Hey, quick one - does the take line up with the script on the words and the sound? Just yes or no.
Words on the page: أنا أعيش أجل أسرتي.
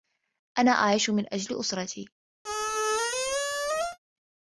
no